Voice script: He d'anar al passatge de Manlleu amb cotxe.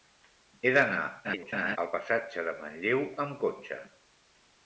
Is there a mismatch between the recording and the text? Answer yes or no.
yes